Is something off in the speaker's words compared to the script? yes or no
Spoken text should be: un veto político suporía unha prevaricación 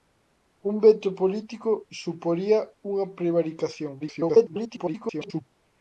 yes